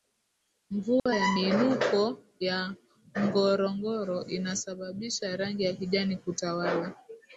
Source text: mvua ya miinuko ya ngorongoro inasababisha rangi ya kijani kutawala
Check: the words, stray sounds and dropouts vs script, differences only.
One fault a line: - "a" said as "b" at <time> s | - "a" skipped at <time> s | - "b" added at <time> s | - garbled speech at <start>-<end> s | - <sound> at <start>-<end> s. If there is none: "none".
- dropout at 1.0-1.1 s